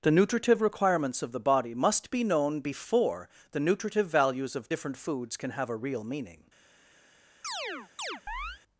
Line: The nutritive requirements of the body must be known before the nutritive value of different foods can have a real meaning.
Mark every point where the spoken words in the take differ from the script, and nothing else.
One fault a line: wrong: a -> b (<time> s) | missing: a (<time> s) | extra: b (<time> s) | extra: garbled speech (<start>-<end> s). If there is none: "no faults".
wrong: value -> values (4.1 s)